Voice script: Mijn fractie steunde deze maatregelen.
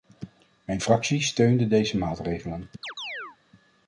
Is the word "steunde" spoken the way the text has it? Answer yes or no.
yes